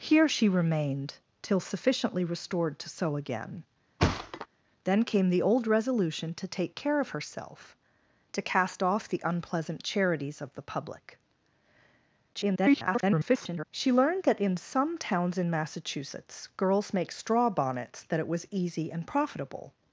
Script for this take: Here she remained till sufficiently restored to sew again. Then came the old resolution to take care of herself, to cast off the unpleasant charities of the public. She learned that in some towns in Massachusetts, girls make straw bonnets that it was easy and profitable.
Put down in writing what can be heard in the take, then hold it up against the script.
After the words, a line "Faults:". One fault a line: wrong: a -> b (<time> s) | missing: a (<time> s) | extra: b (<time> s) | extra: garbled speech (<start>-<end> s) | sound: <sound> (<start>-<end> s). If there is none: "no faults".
Here she remained till sufficiently restored to sew again. Then came the old resolution to take care of herself, to cast off the unpleasant charities of the public. [garbled] She learned that in some towns in Massachusetts, girls make straw bonnets that it was easy and profitable.
Faults:
sound: thud (4.0-4.5 s)
extra: garbled speech (12.3-13.6 s)